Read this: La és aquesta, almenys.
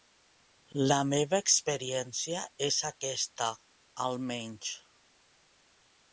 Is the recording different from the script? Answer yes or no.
yes